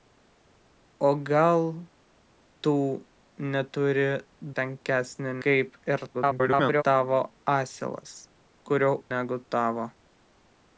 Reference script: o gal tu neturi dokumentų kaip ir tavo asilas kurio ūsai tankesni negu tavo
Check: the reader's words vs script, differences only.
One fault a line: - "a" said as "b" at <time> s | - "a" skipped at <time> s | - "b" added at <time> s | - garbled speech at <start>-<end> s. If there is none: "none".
- "dokumentų" said as "tankesni" at 4.6 s
- garbled speech at 6.1-6.8 s
- "ūsai tankesni" skipped at 8.9 s